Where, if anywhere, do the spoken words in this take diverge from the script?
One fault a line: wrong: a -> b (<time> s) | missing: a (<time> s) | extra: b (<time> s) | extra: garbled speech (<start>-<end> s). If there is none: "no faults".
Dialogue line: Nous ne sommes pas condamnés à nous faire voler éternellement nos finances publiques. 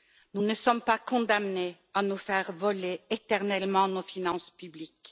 no faults